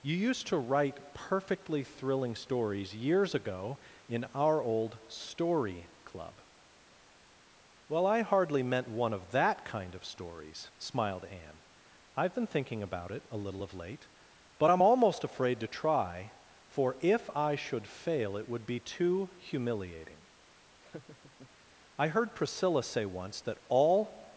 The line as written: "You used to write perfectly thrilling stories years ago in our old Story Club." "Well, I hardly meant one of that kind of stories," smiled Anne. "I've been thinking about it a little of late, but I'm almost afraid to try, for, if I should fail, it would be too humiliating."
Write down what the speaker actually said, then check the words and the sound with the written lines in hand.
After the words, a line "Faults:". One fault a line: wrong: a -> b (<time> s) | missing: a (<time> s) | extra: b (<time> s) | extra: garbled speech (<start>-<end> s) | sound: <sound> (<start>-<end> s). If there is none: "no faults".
"You used to write perfectly thrilling stories years ago in our old Story Club." "Well, I hardly meant one of that kind of stories," smiled Anne. "I've been thinking about it a little of late, but I'm almost afraid to try, for, if I should fail, it would be too humiliating." "I heard Priscilla say once that all
Faults:
sound: laugh (20.8-21.5 s)
extra: I heard Priscilla say once that all (22.0 s)